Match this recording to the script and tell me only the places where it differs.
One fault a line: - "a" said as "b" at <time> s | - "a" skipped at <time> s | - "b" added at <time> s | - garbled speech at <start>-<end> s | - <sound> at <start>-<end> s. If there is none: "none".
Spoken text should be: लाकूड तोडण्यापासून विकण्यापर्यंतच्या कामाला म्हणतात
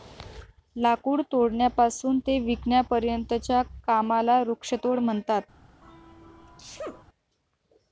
- "ते" added at 2.2 s
- "वृक्षतोड" added at 4.4 s
- sneeze at 5.8-7.0 s